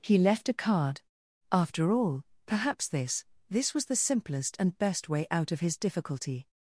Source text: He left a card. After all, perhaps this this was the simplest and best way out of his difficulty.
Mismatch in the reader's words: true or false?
false